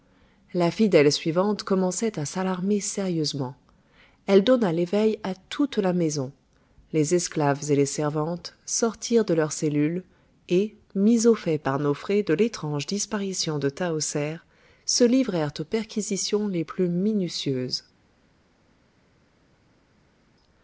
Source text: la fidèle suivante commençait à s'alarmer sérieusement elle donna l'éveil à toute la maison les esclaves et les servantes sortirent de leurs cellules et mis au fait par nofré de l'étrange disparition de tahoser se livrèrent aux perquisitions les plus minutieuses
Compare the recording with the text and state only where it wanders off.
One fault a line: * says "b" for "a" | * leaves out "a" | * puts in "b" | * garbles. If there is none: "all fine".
all fine